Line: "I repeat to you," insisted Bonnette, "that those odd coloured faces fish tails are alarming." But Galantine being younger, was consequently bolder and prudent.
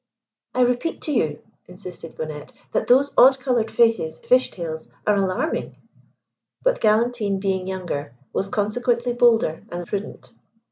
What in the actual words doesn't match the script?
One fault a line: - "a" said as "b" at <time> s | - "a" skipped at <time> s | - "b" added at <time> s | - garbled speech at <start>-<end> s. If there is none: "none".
none